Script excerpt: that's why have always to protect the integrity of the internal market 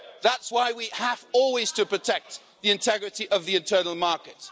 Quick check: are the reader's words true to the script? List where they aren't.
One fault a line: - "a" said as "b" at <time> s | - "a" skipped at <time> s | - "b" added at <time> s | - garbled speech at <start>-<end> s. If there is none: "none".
- "we" added at 0.7 s